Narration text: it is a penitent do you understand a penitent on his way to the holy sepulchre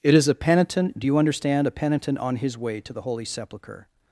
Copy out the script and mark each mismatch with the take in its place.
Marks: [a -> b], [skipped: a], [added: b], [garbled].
it is a penitent do you understand a penitent on his way to the holy sepulchre